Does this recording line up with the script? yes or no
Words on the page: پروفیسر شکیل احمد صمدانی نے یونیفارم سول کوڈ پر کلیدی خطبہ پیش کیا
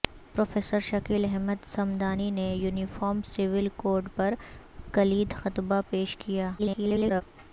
no